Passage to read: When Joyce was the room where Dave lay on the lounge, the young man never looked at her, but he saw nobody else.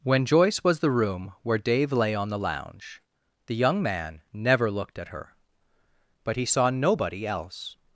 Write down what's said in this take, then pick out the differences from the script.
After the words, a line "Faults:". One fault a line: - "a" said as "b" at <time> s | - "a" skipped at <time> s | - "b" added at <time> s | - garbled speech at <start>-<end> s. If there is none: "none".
When Joyce was the room where Dave lay on the lounge, the young man never looked at her, but he saw nobody else.
Faults:
none